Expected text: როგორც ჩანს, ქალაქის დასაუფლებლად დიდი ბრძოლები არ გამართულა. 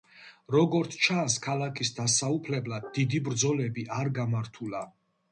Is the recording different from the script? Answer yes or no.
no